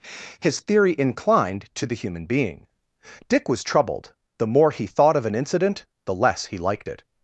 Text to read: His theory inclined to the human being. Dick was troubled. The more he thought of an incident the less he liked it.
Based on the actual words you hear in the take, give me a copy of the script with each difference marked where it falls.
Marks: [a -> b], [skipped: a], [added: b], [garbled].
His theory inclined to the human being. Dick was troubled. The more he thought of an incident the less he liked it.